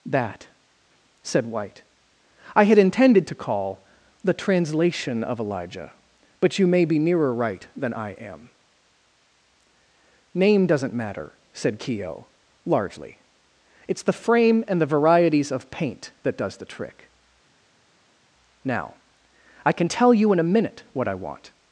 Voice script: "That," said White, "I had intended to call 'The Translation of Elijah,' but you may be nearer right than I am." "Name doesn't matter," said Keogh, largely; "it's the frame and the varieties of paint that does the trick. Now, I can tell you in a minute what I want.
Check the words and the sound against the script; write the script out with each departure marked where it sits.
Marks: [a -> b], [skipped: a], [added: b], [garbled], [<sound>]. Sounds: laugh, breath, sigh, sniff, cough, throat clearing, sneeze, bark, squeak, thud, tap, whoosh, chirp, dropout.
"That," said White, "I had intended to call 'The Translation of Elijah,' but you may be nearer right than I am." "Name doesn't matter," said Keogh, largely; "it's the frame and the varieties of paint that does the trick. Now, I can tell you in a minute what I want.